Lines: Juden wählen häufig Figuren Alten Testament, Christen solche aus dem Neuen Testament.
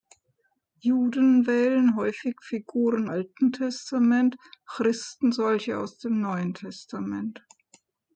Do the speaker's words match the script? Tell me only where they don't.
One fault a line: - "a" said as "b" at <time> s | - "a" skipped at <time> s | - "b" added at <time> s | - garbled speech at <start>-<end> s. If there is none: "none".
none